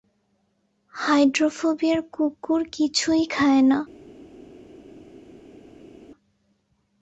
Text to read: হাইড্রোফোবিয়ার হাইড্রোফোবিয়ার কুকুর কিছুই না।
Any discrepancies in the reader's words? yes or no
yes